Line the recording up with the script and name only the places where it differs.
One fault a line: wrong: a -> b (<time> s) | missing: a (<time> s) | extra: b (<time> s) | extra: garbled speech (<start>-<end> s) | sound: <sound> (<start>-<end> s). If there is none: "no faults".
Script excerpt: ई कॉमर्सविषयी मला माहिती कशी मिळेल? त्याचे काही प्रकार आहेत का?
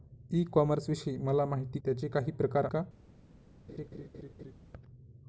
missing: कशी मिळेल (1.8 s)
missing: आहेत (2.7 s)
sound: laugh (3.7-4.6 s)